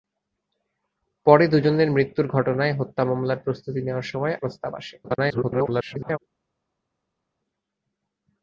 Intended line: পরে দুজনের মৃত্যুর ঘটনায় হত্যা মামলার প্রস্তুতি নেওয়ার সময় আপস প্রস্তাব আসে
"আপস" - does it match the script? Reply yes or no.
no